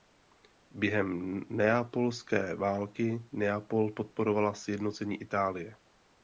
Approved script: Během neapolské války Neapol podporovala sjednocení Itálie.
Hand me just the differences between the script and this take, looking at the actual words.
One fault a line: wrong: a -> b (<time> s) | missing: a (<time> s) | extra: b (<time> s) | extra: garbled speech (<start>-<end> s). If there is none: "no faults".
no faults